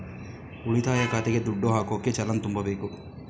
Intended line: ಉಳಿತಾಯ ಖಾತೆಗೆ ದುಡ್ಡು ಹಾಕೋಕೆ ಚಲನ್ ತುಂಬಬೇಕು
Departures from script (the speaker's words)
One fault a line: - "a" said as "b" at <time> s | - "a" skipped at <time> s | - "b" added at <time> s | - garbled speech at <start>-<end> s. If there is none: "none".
none